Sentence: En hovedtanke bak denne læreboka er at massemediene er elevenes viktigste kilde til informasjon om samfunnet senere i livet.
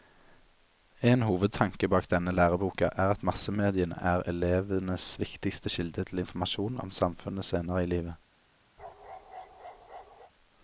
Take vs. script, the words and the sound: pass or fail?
fail